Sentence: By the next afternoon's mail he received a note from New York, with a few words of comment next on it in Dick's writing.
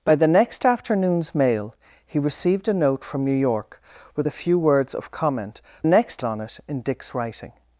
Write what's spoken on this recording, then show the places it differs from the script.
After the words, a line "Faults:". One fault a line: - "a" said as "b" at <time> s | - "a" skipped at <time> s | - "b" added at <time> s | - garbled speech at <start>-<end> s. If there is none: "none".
By the next afternoon's mail he received a note from New York, with a few words of comment next on it in Dick's writing.
Faults:
none